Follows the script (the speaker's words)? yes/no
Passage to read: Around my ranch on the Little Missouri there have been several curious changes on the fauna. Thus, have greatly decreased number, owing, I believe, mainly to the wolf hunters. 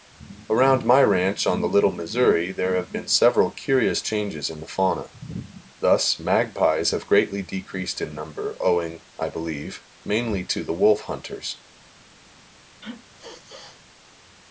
no